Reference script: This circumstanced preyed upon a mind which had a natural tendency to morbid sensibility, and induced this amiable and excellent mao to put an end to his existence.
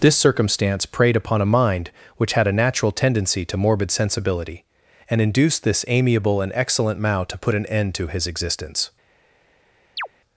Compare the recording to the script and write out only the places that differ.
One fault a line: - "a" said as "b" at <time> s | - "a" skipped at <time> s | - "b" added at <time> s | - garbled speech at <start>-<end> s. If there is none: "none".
- "circumstanced" said as "circumstance" at 0.2 s